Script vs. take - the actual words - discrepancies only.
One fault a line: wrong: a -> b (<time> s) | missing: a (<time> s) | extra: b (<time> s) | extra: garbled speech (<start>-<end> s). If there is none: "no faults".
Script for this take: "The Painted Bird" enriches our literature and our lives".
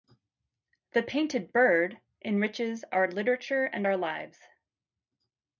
no faults